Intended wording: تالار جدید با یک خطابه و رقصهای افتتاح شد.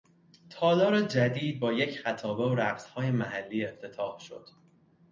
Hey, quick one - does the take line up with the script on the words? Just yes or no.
no